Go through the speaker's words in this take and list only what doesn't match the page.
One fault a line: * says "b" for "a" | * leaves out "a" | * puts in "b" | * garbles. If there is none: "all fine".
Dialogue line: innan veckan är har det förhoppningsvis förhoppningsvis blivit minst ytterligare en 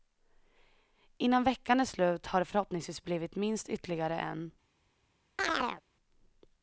* puts in "slut"
* leaves out "förhoppningsvis"